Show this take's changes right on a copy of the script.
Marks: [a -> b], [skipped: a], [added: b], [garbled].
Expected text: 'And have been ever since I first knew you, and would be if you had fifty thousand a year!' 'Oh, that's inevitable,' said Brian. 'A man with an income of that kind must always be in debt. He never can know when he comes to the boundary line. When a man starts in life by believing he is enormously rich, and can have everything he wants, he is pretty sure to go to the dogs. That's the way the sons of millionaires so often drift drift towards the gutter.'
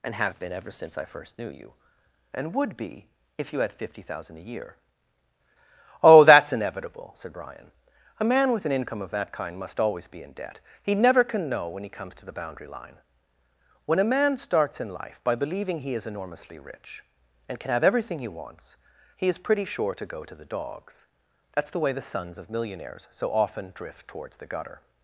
'And have been ever since I first knew you, and would be if you had fifty thousand a year!' 'Oh, that's inevitable,' said Brian. 'A man with an income of that kind must always be in debt. He never can know when he comes to the boundary line. When a man starts in life by believing he is enormously rich, and can have everything he wants, he is pretty sure to go to the dogs. That's the way the sons of millionaires so often drift [skipped: drift] towards the gutter.'